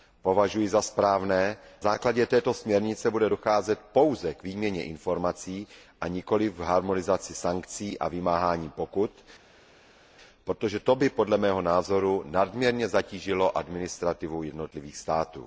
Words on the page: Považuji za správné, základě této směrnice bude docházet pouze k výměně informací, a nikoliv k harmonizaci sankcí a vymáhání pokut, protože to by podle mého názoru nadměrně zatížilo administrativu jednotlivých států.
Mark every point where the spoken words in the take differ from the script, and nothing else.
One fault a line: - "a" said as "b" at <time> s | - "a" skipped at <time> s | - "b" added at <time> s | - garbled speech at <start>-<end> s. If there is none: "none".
none